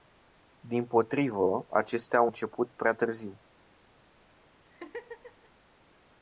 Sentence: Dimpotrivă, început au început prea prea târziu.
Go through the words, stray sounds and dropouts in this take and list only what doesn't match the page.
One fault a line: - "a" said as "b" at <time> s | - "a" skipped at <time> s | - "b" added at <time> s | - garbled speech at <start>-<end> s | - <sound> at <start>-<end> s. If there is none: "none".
- "început" said as "acestea" at 1.7 s
- "prea" skipped at 2.9 s
- laugh at 4.6-5.5 s